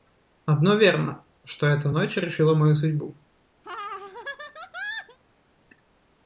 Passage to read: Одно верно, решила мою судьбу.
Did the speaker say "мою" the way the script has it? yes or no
yes